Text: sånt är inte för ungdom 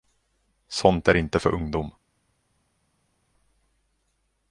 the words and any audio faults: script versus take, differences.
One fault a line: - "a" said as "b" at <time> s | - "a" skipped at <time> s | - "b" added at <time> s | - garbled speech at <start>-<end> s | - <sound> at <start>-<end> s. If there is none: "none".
none